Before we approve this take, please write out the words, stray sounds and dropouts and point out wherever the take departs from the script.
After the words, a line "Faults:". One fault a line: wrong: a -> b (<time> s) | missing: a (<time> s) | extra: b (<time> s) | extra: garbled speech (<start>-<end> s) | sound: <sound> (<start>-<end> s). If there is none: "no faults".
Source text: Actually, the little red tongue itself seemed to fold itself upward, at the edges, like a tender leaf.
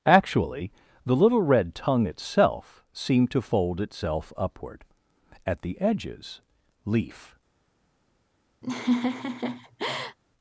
Actually, the little red tongue itself seemed to fold itself upward, at the edges, leaf.
Faults:
missing: like a tender (6.4 s)
sound: laugh (8.6-10.2 s)